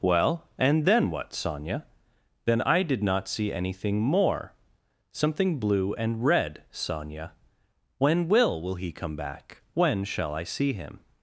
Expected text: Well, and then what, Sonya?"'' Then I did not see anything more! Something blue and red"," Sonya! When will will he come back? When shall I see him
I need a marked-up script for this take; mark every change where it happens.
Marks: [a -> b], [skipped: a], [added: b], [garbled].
Well, and then what, Sonya?"'' Then I did not see anything more! Something blue and red"," Sonya! When will will he come back? When shall I see him